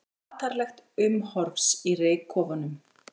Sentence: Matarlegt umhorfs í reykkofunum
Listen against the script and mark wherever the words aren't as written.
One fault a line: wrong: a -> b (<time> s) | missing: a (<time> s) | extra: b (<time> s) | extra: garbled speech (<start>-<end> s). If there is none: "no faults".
no faults